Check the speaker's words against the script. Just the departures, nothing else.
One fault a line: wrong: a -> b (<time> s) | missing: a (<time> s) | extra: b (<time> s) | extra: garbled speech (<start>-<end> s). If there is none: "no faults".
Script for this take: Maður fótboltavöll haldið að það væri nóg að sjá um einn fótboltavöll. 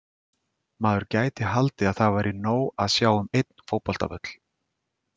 wrong: fótboltavöll -> gæti (1.1 s)